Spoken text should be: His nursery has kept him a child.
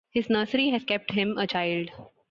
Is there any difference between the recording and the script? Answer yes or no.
no